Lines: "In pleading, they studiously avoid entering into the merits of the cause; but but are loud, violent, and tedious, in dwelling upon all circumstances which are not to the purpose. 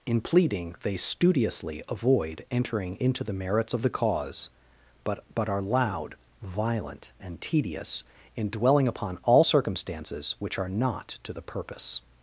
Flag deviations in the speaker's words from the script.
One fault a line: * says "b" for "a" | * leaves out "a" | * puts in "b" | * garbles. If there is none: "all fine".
all fine